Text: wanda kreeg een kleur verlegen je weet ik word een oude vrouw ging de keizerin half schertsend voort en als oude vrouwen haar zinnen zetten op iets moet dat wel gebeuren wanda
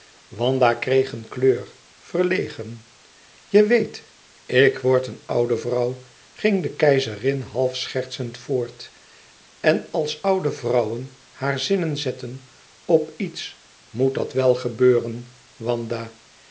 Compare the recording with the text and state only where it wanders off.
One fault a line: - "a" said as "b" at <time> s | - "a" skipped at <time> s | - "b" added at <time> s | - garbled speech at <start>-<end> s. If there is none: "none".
none